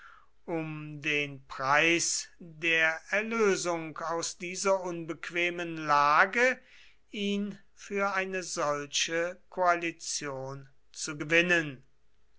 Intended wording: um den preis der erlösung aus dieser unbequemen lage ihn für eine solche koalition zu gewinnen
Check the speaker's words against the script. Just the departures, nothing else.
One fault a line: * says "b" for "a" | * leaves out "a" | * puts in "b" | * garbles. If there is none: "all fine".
all fine